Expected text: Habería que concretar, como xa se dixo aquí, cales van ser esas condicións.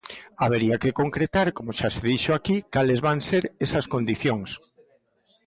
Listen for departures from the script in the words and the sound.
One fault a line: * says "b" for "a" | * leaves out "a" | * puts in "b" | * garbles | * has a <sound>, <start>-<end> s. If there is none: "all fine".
all fine